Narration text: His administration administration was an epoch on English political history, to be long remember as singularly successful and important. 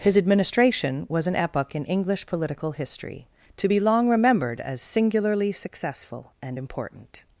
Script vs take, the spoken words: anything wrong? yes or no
yes